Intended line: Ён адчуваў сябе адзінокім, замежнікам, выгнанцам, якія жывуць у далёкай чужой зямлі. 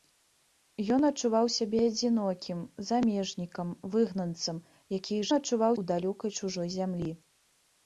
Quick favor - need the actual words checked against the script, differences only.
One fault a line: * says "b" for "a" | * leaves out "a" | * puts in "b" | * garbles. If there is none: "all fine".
* says "адчуваў" for "жывуць"